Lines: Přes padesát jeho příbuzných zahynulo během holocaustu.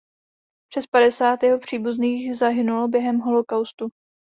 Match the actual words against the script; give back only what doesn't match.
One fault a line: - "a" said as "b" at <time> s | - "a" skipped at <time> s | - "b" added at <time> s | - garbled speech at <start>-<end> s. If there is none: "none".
none